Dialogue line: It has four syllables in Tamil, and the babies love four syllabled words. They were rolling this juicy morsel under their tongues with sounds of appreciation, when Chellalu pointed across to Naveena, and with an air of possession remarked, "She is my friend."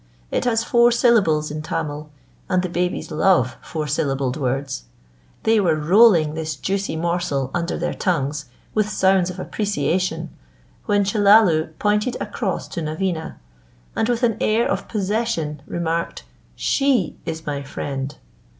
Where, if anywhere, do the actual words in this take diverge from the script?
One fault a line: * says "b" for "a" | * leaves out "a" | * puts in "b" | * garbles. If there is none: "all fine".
all fine